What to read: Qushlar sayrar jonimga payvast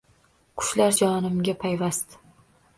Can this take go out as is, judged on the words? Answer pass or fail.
fail